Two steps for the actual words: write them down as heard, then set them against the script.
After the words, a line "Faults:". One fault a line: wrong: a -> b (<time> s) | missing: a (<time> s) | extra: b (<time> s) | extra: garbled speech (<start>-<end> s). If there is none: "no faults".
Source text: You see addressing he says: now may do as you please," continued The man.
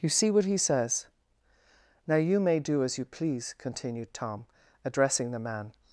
You see what he says: now you may do as you please," continued Tom, addressing the man.
Faults:
wrong: addressing -> what (0.3 s)
extra: you (2.1 s)
extra: Tom addressing (4.1 s)